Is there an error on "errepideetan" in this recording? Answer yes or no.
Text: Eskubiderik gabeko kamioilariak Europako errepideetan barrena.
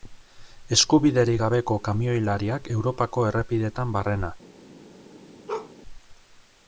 no